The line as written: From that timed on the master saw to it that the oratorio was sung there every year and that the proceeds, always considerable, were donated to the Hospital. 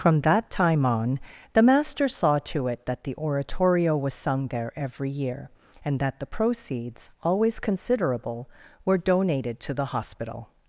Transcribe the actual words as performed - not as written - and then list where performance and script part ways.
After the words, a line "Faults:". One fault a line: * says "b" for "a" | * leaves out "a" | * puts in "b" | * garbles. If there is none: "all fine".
From that time on the master saw to it that the oratorio was sung there every year and that the proceeds, always considerable, were donated to the Hospital.
Faults:
* says "time" for "timed"